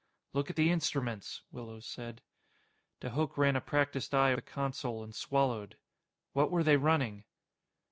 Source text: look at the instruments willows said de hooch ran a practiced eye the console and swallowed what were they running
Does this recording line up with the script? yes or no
yes